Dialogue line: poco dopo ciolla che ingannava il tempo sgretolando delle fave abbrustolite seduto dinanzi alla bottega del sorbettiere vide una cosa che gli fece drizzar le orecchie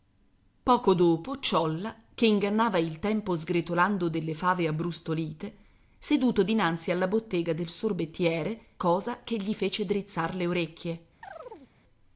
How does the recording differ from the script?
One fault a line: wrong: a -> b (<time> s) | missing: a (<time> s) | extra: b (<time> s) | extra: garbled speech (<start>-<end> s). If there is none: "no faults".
missing: vide una (8.7 s)